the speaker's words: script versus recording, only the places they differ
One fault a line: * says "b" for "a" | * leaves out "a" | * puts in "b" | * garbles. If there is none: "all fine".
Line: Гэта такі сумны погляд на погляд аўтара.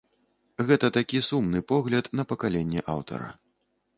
* says "пакаленне" for "погляд"